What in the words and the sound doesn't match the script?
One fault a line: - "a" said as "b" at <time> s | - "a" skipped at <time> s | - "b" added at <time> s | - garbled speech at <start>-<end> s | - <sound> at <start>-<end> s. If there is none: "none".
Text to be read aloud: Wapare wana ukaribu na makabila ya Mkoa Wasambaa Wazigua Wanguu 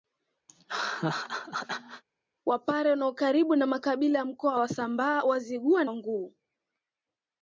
- laugh at 0.5-2.0 s